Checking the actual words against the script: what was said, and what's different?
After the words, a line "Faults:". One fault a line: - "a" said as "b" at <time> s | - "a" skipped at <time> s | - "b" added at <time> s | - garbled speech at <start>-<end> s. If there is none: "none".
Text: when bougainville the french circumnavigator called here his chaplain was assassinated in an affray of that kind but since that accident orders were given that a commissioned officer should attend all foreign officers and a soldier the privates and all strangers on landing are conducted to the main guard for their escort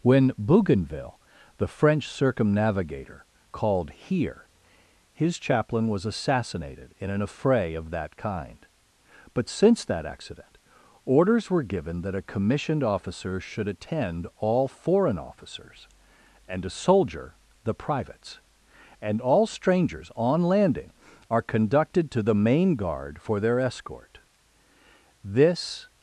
when bougainville the french circumnavigator called here his chaplain was assassinated in an affray of that kind but since that accident orders were given that a commissioned officer should attend all foreign officers and a soldier the privates and all strangers on landing are conducted to the main guard for their escort this
Faults:
- "this" added at 25.2 s